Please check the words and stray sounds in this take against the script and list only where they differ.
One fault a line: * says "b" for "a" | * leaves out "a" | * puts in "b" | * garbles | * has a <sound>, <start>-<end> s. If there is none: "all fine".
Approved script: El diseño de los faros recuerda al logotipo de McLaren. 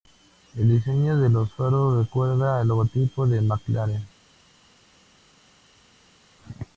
all fine